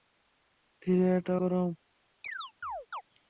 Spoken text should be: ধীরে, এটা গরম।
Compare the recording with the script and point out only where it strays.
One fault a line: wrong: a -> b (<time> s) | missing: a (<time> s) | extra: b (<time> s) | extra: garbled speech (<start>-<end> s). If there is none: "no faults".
no faults